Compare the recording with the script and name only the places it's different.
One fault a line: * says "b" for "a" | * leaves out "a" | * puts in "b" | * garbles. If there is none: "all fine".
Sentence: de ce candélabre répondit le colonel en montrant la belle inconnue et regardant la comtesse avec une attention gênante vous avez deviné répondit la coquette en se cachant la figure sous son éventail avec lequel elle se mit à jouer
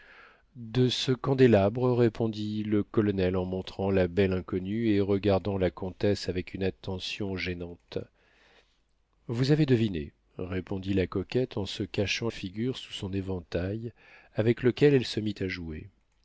* leaves out "la"